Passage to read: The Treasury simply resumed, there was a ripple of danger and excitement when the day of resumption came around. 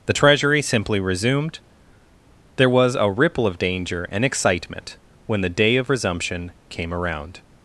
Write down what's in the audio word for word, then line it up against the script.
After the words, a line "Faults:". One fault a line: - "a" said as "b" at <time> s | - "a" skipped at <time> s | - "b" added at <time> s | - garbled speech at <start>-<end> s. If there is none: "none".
The Treasury simply resumed, there was a ripple of danger and excitement when the day of resumption came around.
Faults:
none